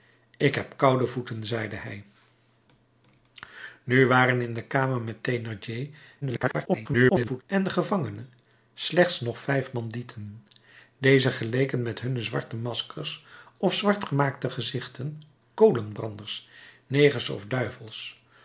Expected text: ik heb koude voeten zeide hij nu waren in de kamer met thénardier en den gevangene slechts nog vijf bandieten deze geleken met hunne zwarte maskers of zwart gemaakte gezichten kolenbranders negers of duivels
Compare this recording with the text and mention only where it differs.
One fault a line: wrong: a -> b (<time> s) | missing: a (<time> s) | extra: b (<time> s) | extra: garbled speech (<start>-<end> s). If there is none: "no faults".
extra: garbled speech (6.2-7.4 s)